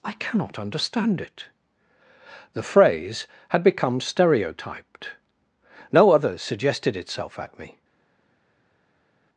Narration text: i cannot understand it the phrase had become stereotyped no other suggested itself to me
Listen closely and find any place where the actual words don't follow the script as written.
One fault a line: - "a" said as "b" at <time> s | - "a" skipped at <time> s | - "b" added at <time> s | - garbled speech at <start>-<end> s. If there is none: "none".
- "to" said as "at" at 7.4 s